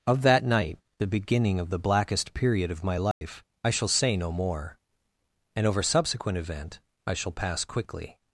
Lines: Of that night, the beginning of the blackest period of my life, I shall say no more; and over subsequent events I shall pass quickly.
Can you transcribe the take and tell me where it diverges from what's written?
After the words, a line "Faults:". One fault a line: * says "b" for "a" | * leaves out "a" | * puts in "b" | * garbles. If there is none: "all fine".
Of that night, the beginning of the blackest period of my life, I shall say no more; and over subsequent event I shall pass quickly.
Faults:
* says "event" for "events"